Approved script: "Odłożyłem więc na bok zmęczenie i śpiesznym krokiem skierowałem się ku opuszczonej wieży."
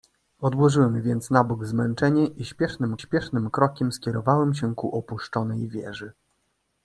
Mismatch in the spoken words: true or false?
true